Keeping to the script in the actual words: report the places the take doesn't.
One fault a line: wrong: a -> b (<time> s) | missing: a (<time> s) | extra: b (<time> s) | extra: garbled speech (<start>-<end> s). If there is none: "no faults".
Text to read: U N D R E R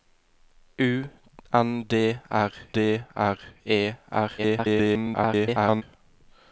extra: D R (2.7 s)
extra: garbled speech (4.4-5.8 s)